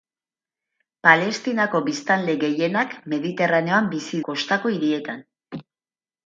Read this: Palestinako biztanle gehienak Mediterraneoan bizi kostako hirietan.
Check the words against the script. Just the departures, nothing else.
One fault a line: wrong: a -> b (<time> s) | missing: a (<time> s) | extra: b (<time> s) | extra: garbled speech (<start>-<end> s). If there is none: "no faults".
no faults